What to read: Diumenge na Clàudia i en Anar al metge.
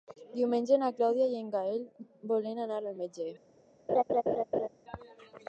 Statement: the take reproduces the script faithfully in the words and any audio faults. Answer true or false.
false